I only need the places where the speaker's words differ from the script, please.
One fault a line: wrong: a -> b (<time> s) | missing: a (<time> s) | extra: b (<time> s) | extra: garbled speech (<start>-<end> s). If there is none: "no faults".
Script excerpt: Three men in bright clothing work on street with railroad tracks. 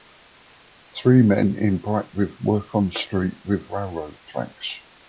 wrong: clothing -> with (2.1 s)